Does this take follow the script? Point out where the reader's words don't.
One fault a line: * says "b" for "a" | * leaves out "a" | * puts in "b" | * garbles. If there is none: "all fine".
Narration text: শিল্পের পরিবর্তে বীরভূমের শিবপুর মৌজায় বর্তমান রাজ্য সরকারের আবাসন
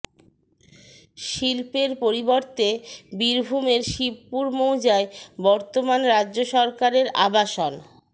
all fine